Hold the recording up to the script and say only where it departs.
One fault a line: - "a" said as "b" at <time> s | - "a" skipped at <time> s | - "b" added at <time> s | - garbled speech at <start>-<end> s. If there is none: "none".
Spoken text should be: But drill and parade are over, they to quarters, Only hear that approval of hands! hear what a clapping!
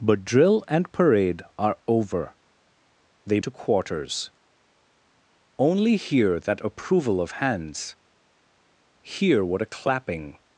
none